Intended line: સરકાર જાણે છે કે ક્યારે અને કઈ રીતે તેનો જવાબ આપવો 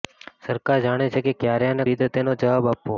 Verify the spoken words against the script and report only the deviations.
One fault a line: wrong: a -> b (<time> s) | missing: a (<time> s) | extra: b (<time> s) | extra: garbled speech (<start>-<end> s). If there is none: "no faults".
missing: કઈ (1.9 s)